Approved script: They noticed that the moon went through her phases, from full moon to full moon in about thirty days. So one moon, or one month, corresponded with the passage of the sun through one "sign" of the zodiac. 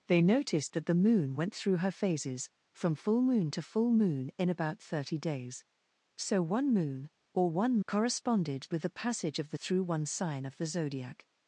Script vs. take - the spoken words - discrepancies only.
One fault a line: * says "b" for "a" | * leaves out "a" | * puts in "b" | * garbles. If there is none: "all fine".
* leaves out "month"
* leaves out "sun"